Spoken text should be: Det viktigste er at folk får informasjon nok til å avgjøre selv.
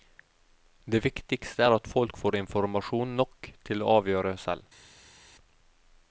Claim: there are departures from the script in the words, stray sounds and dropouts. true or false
false